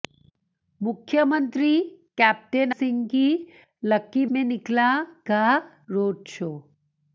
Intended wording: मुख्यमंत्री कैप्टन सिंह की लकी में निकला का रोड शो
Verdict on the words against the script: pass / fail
pass